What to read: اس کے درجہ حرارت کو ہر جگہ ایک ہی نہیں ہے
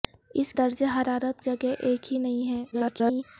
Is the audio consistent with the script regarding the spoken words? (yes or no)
no